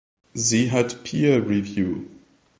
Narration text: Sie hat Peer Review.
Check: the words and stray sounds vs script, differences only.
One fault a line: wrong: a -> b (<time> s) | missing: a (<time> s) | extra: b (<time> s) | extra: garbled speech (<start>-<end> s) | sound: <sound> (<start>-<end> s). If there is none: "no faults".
no faults